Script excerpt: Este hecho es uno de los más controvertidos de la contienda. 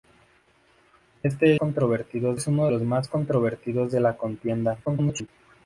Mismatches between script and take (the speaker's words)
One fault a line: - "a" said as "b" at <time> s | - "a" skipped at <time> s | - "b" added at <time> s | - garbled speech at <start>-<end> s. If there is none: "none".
- "hecho" said as "controvertidos" at 1.6 s
- "de" skipped at 2.7 s
- garbled speech at 4.8-5.3 s